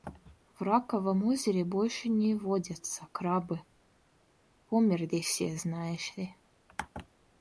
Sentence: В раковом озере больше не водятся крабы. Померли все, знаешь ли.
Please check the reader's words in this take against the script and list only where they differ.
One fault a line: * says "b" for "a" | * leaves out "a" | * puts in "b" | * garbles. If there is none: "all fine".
all fine